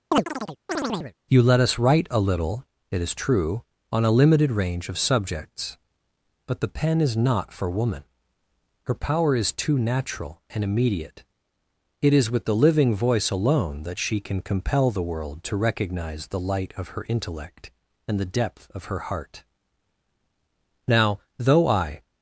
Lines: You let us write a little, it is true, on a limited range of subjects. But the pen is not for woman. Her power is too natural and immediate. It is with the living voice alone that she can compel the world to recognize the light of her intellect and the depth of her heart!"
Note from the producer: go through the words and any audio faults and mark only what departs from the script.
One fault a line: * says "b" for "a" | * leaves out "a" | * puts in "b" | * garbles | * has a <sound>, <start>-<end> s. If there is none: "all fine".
* has a chirp, 0.1-1.1 s
* puts in "Now though I"